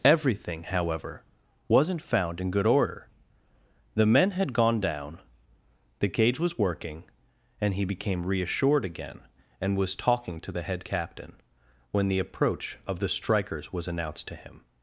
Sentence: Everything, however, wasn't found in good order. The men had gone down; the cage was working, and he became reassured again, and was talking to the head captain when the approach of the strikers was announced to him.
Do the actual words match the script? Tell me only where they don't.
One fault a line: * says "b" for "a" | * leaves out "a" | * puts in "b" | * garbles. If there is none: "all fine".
all fine